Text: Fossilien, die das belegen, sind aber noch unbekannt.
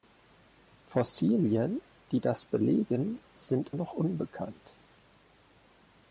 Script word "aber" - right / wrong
wrong